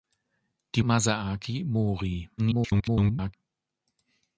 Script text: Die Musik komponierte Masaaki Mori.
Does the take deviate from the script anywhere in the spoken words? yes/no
yes